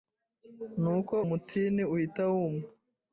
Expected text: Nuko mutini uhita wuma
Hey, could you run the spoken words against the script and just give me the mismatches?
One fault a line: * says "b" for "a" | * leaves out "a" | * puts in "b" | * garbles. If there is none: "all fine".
all fine